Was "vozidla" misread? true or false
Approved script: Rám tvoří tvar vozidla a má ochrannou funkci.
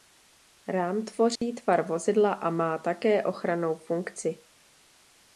false